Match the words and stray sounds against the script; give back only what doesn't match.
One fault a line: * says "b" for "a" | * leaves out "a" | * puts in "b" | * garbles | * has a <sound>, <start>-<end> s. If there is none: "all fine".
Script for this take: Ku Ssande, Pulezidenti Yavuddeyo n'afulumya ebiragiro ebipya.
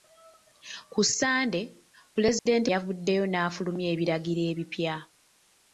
* has a dropout, 2.4-2.5 s